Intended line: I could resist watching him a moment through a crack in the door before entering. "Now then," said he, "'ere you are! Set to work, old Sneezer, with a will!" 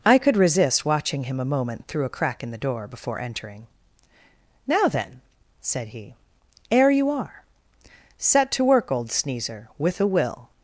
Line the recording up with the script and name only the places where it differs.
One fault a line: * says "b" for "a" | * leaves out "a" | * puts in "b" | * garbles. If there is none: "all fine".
all fine